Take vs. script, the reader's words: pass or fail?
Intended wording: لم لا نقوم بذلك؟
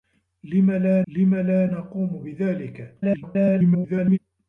fail